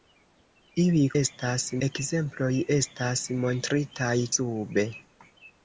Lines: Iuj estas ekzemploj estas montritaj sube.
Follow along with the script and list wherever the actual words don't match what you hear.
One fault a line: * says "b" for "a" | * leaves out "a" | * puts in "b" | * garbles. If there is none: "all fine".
all fine